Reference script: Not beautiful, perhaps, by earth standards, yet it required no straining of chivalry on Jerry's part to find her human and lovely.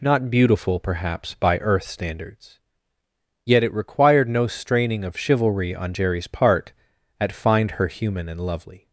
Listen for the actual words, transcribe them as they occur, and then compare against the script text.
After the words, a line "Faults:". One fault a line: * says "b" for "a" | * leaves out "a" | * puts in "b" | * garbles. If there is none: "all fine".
Not beautiful, perhaps, by earth standards, yet it required no straining of chivalry on Jerry's part at find her human and lovely.
Faults:
* says "at" for "to"